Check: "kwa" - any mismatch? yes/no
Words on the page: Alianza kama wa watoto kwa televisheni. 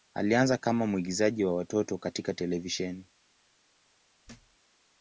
yes